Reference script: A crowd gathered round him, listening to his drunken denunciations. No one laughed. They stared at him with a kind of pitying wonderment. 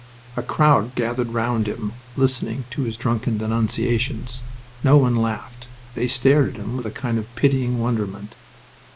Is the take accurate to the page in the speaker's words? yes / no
yes